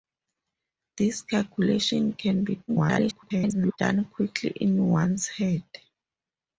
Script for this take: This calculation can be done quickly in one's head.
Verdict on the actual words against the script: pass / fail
fail